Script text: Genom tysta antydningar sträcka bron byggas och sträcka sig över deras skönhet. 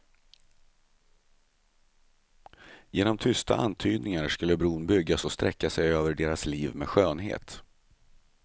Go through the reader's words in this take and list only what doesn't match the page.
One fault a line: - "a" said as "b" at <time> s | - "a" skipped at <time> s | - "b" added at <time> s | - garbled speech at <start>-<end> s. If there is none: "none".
- "sträcka" said as "skulle" at 4.3 s
- "liv med" added at 6.5 s